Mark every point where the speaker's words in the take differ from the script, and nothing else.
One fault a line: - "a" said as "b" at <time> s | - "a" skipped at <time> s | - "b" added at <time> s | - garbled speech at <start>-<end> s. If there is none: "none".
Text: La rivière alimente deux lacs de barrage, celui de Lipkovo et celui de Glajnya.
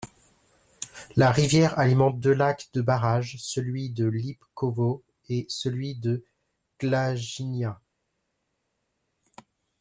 none